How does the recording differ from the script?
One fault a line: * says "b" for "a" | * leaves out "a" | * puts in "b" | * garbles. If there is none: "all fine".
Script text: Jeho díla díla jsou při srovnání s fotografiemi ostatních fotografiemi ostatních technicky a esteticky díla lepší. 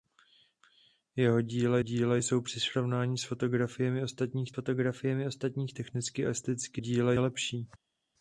all fine